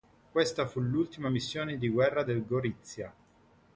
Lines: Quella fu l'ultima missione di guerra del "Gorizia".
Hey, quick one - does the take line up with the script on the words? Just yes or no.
no